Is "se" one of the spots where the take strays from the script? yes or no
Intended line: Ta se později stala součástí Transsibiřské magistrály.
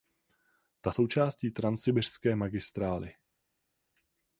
yes